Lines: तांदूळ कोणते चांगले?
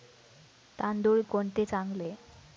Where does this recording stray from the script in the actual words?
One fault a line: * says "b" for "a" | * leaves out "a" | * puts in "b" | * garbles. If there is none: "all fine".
all fine